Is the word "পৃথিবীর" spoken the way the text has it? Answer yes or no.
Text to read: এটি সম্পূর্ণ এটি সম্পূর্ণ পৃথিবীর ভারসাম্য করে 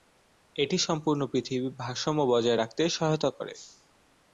no